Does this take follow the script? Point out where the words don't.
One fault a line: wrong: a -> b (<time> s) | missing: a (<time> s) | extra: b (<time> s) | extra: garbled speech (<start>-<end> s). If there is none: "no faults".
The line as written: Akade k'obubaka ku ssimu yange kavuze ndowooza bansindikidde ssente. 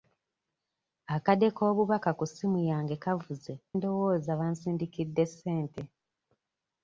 no faults